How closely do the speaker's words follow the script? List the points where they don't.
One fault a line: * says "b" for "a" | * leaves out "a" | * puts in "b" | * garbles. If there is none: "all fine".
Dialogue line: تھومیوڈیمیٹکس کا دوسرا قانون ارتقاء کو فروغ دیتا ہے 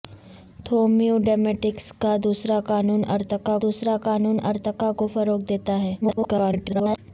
* puts in "دوسرا قانون ارتقاء"
* garbles